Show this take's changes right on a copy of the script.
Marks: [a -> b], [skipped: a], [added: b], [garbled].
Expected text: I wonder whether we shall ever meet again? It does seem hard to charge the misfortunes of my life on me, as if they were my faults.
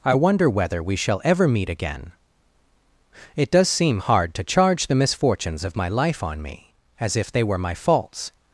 I wonder whether we shall ever meet again? It does seem hard to charge the misfortunes of my life on me, as if they were my faults.